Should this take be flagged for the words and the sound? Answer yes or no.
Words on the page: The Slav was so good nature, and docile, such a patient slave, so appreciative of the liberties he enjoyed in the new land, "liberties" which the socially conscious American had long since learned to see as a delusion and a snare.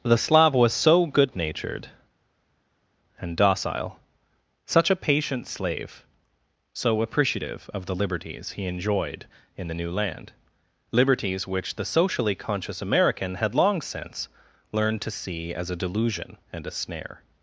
yes